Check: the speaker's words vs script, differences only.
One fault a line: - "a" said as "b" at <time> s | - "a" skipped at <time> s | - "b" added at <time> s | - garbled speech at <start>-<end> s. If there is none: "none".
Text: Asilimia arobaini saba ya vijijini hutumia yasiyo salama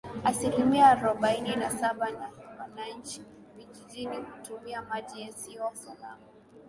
- "na" added at 1.6 s
- "wananchi" added at 2.6 s
- "maji" added at 4.8 s